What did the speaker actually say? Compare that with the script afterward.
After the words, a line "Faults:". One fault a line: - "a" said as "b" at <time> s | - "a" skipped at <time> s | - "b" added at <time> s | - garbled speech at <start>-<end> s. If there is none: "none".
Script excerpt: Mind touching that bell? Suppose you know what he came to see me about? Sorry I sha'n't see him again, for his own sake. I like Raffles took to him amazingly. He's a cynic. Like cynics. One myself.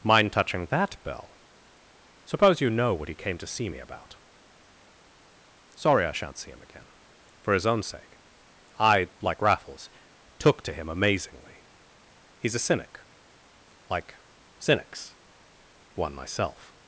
Mind touching that bell? Suppose you know what he came to see me about? Sorry I sha'n't see him again, for his own sake. I like Raffles took to him amazingly. He's a cynic. Like cynics. One myself.
Faults:
none